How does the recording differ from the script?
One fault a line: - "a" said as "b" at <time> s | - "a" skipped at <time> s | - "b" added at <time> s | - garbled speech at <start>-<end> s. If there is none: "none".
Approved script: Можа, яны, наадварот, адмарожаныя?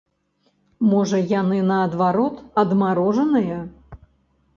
none